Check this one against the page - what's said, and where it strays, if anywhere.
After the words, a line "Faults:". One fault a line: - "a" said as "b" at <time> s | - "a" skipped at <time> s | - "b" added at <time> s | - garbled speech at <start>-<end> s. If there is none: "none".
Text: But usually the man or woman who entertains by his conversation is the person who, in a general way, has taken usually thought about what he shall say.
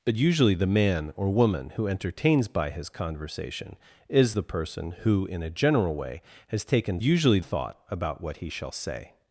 But usually the man or woman who entertains by his conversation is the person who, in a general way, has taken usually thought about what he shall say.
Faults:
none